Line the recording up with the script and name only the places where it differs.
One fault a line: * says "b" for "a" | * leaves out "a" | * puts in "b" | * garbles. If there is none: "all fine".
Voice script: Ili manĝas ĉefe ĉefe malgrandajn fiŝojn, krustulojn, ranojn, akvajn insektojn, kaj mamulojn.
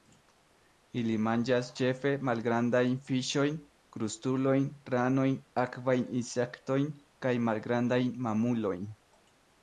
* leaves out "ĉefe"
* puts in "malgrandajn"